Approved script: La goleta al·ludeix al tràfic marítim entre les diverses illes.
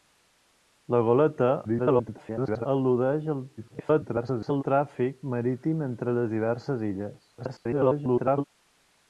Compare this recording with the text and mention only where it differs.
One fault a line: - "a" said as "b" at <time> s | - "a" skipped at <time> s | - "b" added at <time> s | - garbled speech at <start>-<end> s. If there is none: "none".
- garbled speech at 1.6-2.7 s
- garbled speech at 3.6-4.6 s
- garbled speech at 7.4-8.4 s